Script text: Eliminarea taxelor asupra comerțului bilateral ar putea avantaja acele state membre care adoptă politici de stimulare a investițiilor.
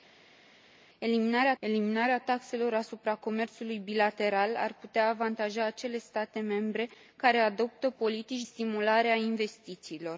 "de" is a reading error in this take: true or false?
true